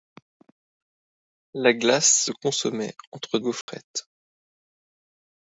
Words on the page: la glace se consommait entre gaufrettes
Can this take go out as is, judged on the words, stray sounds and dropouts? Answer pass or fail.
fail